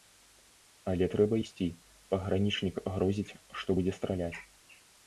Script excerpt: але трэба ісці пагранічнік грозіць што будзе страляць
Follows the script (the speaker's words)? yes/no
yes